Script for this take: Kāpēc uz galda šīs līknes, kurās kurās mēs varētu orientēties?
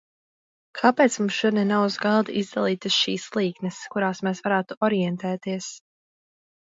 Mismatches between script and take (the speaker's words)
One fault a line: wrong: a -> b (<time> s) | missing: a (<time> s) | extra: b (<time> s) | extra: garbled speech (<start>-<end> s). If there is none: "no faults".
extra: mums šodien nav (1.2 s)
extra: izdalītas (2.4 s)
missing: kurās (4.2 s)